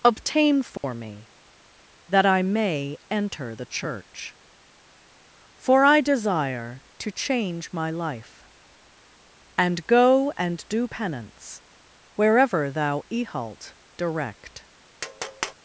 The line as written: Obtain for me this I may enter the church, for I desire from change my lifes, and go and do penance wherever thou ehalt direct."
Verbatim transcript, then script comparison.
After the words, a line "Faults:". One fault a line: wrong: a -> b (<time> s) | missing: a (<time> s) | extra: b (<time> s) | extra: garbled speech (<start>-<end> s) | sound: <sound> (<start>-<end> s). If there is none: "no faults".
Obtain for me that I may enter the church, for I desire to change my life, and go and do penance wherever thou ehalt direct."
Faults:
sound: dropout (0.8-0.8 s)
wrong: this -> that (2.1 s)
wrong: from -> to (7.0 s)
wrong: lifes -> life (7.9 s)
sound: tap (15.0-15.5 s)